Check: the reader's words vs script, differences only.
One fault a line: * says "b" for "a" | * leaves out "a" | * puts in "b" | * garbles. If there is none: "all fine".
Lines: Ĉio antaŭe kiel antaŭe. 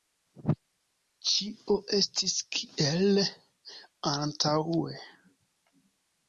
* says "estis" for "antaŭe"